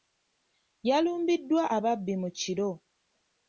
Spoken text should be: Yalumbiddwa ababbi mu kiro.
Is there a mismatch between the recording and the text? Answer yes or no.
no